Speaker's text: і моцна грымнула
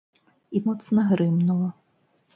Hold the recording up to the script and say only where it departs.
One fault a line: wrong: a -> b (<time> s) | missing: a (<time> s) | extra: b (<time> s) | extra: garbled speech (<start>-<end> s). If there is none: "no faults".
no faults